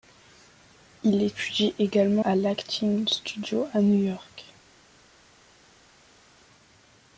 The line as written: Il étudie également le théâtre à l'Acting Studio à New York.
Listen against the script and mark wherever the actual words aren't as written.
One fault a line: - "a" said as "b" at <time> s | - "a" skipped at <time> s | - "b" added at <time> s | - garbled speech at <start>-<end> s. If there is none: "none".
- "le théâtre" skipped at 2.2 s